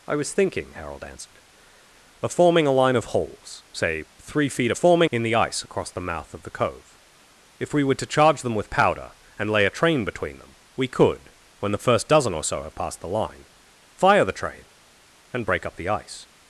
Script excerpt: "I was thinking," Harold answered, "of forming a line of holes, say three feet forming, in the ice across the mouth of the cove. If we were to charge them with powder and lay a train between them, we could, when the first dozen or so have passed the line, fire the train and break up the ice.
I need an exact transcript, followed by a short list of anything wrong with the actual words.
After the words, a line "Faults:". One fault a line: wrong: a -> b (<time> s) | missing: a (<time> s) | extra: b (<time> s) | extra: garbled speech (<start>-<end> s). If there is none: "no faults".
"I was thinking," Harold answered, "of forming a line of holes, say three feet forming, in the ice across the mouth of the cove. If we were to charge them with powder and lay a train between them, we could, when the first dozen or so have passed the line, fire the train and break up the ice.
Faults:
no faults